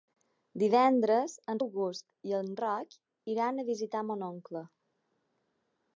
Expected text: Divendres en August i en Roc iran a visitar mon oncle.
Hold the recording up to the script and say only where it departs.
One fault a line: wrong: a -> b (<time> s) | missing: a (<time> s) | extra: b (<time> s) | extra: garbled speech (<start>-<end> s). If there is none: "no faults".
no faults